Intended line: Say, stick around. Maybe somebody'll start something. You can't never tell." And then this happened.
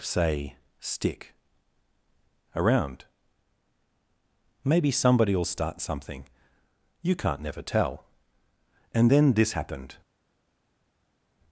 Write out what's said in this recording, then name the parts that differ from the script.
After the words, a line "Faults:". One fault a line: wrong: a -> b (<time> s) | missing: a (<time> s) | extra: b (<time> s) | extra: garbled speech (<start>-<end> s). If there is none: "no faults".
Say, stick around. Maybe somebody'll start something. You can't never tell." And then this happened.
Faults:
no faults